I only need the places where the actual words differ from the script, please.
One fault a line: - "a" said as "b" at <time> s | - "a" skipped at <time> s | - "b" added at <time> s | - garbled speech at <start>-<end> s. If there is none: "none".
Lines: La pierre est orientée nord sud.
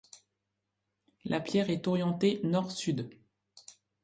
none